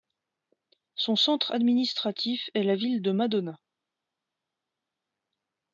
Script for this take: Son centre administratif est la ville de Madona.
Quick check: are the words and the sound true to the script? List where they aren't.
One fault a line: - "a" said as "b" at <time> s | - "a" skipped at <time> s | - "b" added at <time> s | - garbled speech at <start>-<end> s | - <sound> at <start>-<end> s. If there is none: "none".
none